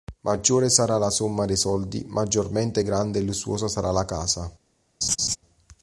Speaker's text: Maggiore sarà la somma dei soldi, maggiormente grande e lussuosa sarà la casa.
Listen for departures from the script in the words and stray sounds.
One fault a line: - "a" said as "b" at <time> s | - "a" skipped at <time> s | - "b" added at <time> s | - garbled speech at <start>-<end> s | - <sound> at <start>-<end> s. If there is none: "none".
- laugh at 5.0-5.4 s